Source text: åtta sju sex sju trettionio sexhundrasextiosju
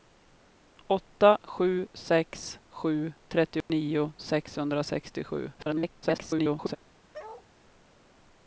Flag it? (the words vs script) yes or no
yes